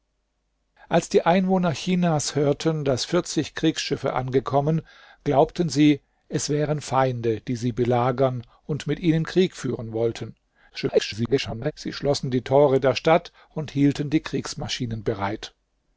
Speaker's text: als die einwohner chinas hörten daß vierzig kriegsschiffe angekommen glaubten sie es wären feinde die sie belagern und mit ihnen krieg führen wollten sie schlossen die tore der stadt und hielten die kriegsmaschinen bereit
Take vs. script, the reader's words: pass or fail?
fail